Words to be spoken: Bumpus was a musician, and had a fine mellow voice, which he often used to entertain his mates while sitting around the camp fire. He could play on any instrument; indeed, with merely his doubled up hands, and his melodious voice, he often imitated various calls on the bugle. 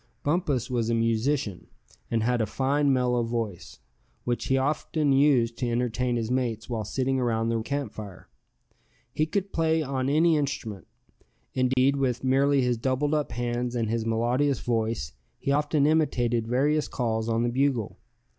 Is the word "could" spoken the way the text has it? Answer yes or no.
yes